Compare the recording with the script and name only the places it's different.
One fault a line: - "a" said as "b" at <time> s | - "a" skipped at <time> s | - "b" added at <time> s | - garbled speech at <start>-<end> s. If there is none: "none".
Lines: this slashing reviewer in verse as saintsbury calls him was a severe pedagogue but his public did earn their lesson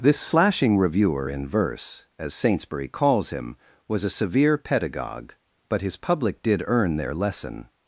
none